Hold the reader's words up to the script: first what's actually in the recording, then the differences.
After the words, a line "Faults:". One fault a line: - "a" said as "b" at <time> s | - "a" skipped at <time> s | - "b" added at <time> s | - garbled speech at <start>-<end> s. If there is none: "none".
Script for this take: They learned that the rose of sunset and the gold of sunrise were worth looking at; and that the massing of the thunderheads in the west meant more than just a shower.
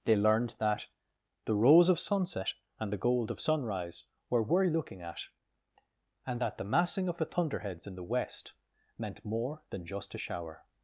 They learned that the rose of sunset and the gold of sunrise were worth looking at; and that the massing of the thunderheads in the west meant more than just a shower.
Faults:
none